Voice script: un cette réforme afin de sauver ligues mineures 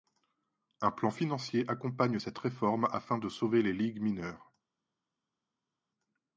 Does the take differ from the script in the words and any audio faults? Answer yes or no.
yes